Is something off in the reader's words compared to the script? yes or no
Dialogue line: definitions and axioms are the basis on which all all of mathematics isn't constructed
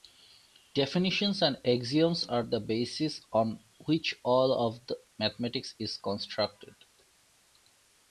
yes